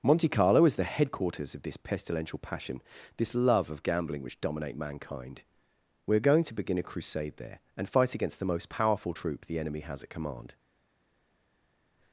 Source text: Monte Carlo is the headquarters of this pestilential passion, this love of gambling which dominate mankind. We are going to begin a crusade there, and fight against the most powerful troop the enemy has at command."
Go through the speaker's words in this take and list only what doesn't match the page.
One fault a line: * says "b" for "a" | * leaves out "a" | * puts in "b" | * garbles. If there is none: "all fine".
all fine